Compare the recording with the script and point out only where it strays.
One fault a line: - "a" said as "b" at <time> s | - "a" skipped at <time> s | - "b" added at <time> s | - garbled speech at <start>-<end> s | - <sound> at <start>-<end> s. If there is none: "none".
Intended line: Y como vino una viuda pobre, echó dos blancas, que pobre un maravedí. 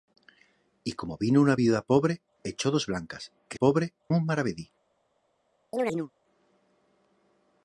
- chirp at 5.7-6.1 s